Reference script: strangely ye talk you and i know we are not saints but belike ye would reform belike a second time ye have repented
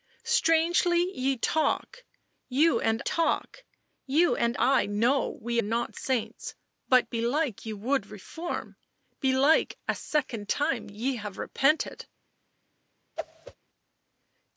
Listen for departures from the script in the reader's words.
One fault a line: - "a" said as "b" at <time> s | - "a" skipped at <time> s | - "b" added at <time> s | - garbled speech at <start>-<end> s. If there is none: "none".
- "talk you and" added at 3.0 s
- "are" skipped at 5.6 s